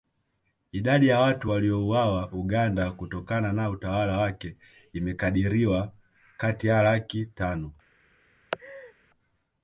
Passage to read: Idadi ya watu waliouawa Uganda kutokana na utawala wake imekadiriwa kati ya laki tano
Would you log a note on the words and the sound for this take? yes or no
yes